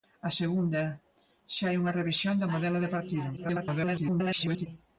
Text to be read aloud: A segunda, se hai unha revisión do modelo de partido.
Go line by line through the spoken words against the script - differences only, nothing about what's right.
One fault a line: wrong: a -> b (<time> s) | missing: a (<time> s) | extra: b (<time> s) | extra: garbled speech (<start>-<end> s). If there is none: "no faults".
extra: garbled speech (3.4-4.7 s)